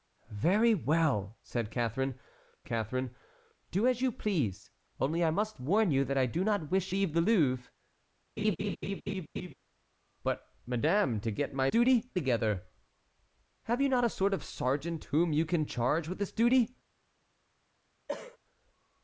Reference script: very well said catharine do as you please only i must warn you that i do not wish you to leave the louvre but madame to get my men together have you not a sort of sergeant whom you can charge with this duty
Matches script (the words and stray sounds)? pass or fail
fail